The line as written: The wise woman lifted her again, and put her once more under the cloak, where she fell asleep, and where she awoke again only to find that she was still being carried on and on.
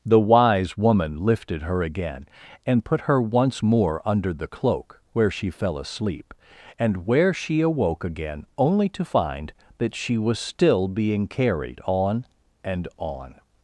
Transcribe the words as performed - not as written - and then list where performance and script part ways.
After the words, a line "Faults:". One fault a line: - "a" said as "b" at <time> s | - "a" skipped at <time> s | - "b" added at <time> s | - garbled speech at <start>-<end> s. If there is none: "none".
The wise woman lifted her again, and put her once more under the cloak, where she fell asleep, and where she awoke again only to find that she was still being carried on and on.
Faults:
none